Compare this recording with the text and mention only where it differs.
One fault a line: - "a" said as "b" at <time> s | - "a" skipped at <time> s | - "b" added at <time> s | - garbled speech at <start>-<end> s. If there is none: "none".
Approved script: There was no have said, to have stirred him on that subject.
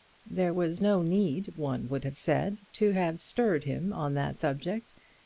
- "need one would" added at 1.0 s